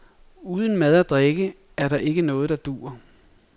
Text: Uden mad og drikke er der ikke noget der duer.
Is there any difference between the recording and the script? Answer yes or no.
no